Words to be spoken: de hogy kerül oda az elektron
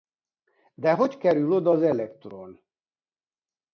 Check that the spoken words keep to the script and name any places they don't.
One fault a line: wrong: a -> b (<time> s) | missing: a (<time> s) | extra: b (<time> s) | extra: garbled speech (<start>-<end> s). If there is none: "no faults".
no faults